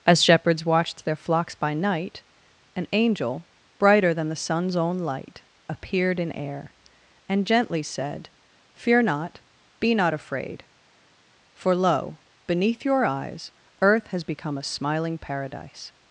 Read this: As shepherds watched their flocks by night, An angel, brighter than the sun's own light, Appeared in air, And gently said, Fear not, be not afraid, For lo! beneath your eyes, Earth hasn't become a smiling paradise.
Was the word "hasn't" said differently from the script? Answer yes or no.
yes